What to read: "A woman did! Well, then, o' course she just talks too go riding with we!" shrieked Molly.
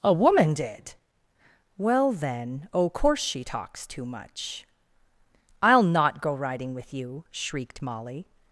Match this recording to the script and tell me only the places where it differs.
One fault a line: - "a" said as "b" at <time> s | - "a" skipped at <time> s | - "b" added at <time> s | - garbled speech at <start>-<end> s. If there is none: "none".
- "just" skipped at 3.4 s
- "much I'll not" added at 4.1 s
- "we" said as "you" at 6.9 s